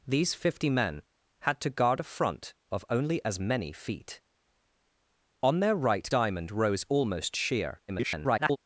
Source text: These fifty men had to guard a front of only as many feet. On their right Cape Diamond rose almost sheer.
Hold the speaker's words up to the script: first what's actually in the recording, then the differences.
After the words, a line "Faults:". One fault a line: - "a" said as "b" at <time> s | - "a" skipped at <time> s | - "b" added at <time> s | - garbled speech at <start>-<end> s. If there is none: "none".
These fifty men had to guard a front of only as many feet. On their right Diamond rose almost sheer. [garbled]
Faults:
- "Cape" skipped at 6.1 s
- garbled speech at 7.9-8.6 s